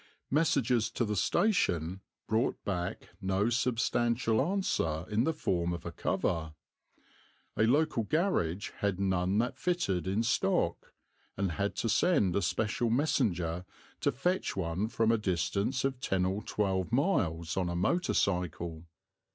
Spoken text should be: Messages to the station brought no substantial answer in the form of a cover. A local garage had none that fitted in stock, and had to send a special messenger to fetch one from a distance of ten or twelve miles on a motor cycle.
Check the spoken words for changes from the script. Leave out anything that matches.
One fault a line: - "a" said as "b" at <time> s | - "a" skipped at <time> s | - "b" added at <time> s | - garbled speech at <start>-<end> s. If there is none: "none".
- "back" added at 2.6 s